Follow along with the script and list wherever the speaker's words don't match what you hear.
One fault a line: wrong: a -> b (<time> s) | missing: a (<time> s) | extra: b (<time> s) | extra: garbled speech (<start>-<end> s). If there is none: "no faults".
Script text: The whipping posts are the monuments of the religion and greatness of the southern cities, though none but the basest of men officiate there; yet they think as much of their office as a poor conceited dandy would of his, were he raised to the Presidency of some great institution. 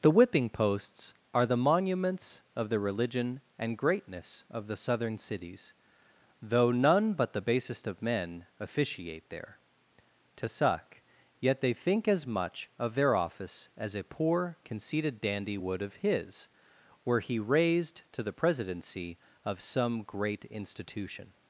extra: to suck (10.4 s)